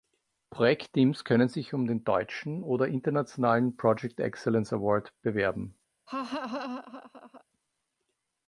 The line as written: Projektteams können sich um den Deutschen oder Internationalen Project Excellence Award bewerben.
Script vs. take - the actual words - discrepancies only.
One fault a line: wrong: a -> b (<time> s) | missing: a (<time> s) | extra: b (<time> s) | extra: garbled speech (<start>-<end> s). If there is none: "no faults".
no faults